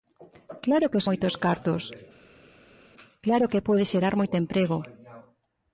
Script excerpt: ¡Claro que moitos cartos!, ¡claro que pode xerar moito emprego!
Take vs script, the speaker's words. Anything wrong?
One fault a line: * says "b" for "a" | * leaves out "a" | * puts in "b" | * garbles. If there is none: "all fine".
all fine